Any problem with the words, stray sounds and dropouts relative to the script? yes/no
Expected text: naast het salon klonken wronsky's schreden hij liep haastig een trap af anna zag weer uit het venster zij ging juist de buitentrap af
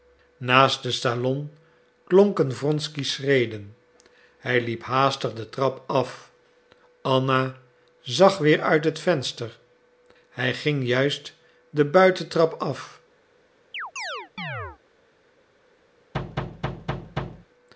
yes